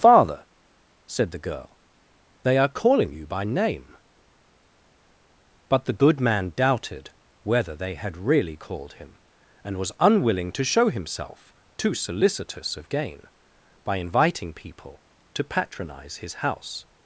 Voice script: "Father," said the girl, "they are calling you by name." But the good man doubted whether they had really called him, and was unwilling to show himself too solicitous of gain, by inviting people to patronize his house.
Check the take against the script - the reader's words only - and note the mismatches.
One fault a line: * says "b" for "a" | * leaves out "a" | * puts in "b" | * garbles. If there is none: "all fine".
all fine